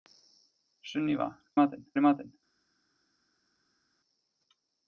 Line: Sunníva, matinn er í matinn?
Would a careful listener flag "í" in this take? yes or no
no